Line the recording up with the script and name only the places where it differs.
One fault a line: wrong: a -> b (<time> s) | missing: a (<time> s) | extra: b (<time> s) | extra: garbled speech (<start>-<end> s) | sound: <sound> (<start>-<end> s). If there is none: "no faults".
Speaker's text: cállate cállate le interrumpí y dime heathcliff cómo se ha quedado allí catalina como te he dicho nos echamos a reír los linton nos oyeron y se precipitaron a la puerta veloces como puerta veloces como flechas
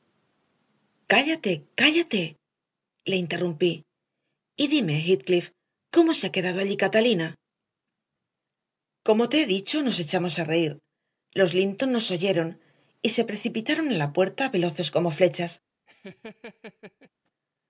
missing: puerta veloces como (15.1 s)
sound: laugh (15.9-17.1 s)